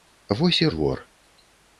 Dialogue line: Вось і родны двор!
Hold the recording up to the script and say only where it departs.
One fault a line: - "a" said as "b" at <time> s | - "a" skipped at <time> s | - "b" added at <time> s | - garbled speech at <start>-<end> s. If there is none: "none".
- "родны" skipped at 0.7 s